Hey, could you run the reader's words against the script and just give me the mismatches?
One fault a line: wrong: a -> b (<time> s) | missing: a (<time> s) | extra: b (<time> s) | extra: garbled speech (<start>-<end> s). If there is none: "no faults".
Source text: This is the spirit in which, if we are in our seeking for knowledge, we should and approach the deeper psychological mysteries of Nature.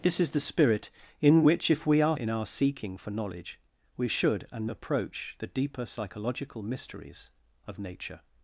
no faults